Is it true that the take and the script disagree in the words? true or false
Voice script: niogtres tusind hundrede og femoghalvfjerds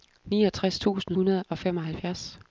false